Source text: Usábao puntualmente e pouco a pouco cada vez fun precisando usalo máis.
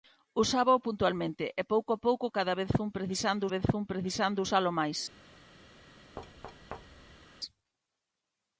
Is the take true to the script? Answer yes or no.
no